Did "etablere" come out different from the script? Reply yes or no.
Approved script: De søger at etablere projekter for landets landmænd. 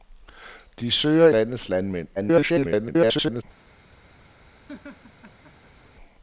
yes